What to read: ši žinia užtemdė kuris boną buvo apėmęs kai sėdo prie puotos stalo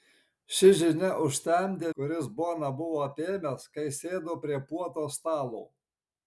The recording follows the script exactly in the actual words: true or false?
true